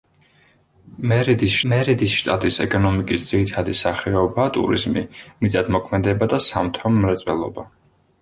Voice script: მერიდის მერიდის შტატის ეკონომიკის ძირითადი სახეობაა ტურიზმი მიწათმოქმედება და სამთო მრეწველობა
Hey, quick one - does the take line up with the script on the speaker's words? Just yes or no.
yes